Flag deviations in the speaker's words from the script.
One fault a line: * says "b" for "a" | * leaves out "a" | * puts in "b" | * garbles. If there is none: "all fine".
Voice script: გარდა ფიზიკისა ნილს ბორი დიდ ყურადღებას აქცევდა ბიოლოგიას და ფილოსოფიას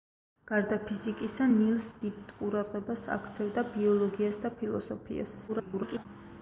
* leaves out "ბორი"
* garbles